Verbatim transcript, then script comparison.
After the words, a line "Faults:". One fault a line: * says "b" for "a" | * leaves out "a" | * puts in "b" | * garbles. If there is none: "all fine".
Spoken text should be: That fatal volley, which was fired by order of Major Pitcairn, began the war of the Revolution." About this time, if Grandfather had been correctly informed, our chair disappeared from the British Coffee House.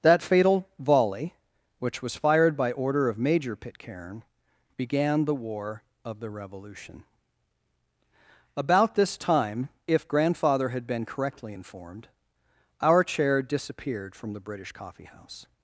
That fatal volley, which was fired by order of Major Pitcairn, began the war of the Revolution." About this time, if Grandfather had been correctly informed, our chair disappeared from the British Coffee House.
Faults:
all fine